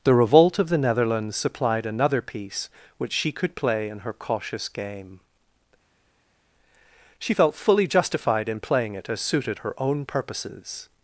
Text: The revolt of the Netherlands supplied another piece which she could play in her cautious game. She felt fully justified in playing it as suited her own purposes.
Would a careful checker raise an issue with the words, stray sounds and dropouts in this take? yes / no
no